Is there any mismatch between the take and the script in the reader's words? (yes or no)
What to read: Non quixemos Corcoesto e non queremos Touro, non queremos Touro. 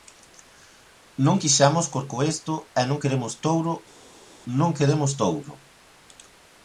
no